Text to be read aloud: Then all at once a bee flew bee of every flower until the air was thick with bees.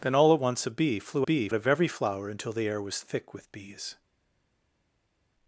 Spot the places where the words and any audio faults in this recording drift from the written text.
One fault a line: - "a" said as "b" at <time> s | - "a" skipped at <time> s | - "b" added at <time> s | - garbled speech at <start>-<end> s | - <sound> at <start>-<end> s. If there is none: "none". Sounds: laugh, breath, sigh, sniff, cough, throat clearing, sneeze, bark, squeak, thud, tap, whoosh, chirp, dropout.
none